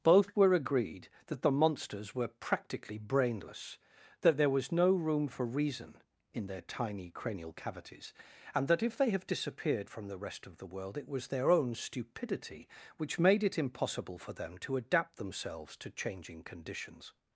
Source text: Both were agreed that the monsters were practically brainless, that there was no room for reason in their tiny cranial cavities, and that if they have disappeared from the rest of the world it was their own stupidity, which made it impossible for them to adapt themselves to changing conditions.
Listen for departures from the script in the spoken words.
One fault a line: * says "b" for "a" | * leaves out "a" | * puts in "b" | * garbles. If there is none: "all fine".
all fine